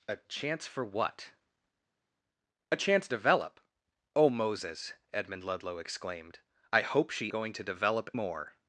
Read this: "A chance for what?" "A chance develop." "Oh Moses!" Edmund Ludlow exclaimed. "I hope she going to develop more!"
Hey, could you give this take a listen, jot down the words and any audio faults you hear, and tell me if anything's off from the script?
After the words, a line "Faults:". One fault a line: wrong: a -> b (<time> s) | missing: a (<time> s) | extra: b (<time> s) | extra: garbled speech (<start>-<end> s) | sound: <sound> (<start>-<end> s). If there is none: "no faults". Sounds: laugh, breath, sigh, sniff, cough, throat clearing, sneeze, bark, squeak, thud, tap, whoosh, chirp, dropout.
"A chance for what?" "A chance develop." "Oh Moses!" Edmund Ludlow exclaimed. "I hope she going to develop more!"
Faults:
no faults